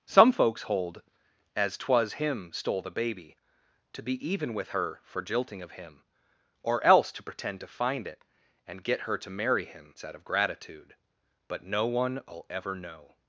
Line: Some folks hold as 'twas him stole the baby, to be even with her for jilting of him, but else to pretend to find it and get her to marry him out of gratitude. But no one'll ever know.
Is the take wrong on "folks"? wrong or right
right